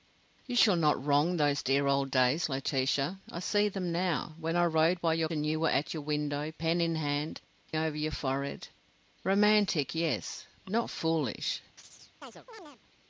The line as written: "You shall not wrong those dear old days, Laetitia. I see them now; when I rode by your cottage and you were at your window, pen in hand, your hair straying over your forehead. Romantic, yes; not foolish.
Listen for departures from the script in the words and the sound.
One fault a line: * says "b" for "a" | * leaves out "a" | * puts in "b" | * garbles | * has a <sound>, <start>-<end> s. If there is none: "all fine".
* leaves out "cottage"
* leaves out "your hair straying"
* has a chirp, 11.8-12.8 s